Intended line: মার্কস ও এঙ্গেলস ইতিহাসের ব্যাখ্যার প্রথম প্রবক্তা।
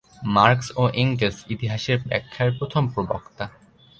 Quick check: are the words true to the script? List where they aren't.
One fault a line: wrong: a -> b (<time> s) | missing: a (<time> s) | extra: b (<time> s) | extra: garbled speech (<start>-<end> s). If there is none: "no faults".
no faults